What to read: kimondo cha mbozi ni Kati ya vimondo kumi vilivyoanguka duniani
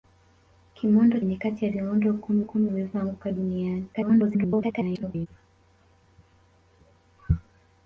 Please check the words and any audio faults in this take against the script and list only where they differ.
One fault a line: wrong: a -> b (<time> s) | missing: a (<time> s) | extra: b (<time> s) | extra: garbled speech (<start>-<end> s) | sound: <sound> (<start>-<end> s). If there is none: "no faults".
missing: cha mbozi (1.2 s)
extra: kumi (2.4 s)
extra: garbled speech (3.9-5.3 s)